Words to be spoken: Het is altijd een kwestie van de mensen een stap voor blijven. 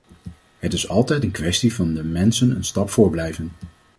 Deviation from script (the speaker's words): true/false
false